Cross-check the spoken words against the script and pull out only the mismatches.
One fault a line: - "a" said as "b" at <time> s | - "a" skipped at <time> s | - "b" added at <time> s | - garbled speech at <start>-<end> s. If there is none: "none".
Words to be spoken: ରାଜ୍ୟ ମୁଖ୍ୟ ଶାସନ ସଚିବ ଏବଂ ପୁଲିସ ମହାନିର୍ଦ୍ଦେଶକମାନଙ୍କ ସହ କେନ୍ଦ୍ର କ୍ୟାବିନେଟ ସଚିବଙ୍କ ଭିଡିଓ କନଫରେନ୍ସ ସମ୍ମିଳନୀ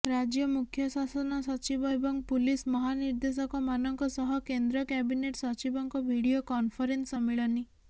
none